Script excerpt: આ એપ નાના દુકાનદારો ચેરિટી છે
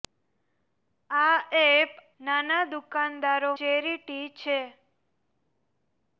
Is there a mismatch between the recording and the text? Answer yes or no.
no